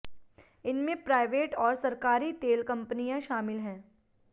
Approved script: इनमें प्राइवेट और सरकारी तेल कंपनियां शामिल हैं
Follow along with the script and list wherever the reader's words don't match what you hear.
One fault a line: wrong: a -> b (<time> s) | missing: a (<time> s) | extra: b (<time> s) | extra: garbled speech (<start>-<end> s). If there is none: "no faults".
no faults